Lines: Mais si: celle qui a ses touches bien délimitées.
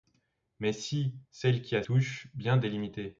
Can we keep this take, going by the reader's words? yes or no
no